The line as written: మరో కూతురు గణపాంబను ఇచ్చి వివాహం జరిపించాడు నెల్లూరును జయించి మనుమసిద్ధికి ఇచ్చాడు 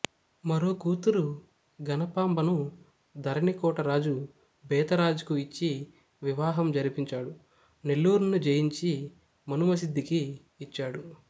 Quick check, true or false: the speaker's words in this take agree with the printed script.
false